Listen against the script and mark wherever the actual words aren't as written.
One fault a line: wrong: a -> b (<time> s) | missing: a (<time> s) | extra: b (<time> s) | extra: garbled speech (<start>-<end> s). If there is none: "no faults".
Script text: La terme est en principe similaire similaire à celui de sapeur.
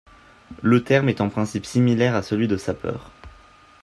wrong: La -> Le (0.6 s)
missing: similaire (2.1 s)